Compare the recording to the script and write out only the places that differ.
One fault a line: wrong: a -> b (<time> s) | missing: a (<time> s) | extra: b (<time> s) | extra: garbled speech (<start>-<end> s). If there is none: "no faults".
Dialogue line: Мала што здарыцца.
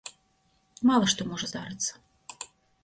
extra: можа (1.3 s)